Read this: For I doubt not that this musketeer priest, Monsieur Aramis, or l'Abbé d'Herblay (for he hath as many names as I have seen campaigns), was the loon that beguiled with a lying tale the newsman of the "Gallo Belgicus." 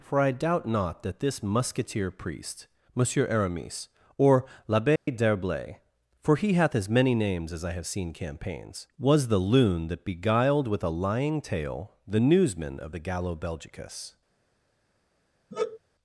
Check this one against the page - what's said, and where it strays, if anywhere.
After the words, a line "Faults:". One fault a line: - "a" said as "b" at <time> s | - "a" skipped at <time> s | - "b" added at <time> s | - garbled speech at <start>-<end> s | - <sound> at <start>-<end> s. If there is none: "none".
For I doubt not that this musketeer priest, Monsieur Aramis, or l'Abbé d'Herblay (for he hath as many names as I have seen campaigns), was the loon that beguiled with a lying tale the newsman of the "Gallo Belgicus."
Faults:
- dropout at 5.0-5.1 s
- sigh at 15.5-15.8 s